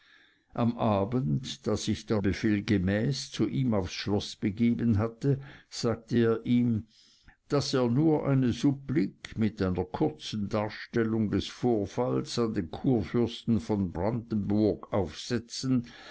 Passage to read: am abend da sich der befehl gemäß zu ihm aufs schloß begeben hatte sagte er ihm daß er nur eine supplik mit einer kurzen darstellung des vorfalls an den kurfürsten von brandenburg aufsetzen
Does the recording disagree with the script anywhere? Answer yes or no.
no